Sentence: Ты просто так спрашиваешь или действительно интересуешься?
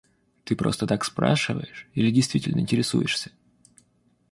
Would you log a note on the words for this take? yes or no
no